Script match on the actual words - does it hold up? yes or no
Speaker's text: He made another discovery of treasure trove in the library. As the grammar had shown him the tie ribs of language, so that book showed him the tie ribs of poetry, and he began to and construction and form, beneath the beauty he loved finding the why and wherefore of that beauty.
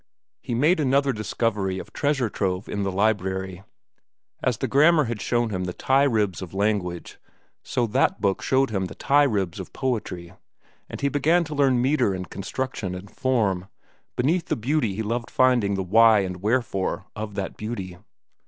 no